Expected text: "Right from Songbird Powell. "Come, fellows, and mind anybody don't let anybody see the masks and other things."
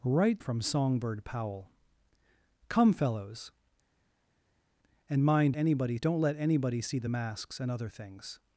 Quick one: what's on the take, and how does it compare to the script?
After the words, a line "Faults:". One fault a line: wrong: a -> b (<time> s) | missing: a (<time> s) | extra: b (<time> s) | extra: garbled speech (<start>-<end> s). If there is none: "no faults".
"Right from Songbird Powell. "Come, fellows, and mind anybody don't let anybody see the masks and other things."
Faults:
no faults